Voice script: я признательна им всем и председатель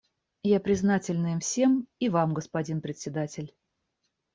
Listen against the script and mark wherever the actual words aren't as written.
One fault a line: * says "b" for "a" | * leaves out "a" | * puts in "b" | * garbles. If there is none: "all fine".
* puts in "вам господин"